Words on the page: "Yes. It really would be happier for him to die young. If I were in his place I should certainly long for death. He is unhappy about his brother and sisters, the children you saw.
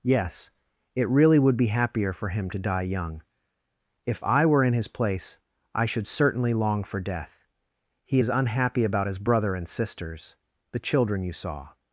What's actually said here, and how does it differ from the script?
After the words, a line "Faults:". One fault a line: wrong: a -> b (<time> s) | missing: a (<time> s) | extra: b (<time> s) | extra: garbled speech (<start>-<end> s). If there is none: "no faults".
"Yes. It really would be happier for him to die young. If I were in his place I should certainly long for death. He is unhappy about his brother and sisters, the children you saw.
Faults:
no faults